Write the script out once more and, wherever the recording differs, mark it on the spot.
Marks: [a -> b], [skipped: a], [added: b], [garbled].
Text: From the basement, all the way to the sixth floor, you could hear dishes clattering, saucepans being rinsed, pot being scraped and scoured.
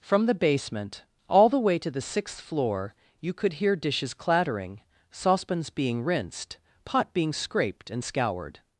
From the basement, all the way to the sixth floor, you could hear dishes clattering, saucepans being rinsed, pot being scraped and scoured.